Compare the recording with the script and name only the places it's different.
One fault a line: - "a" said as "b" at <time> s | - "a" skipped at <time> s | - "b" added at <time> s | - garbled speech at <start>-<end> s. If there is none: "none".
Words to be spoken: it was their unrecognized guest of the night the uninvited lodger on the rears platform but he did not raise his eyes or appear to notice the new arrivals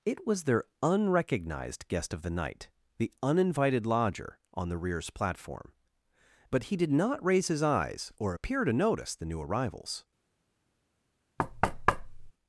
none